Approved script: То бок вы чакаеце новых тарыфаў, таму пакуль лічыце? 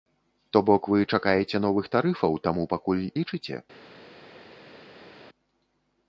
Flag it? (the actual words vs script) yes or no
no